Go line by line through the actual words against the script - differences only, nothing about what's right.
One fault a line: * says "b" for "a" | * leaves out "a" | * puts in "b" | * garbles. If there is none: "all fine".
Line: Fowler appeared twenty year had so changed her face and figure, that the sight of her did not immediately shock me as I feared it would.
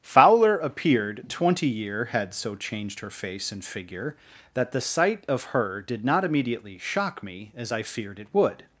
all fine